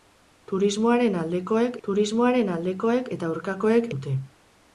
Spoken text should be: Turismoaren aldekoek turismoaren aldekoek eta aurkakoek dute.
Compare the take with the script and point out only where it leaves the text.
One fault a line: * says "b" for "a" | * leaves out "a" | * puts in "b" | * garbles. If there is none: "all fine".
all fine